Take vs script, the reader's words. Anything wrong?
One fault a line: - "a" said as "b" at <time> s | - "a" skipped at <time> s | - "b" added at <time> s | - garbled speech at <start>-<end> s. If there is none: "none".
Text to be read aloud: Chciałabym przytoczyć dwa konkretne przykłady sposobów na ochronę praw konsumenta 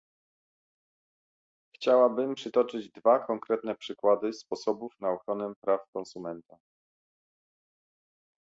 none